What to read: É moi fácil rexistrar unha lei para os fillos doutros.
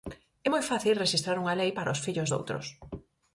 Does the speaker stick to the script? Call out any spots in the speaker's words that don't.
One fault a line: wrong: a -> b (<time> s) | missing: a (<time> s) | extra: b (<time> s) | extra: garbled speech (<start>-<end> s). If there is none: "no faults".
no faults